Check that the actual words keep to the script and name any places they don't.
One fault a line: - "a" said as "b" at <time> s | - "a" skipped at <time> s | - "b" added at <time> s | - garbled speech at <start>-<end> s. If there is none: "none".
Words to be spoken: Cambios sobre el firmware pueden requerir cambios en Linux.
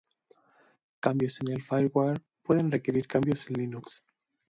- "sobre" said as "en" at 1.4 s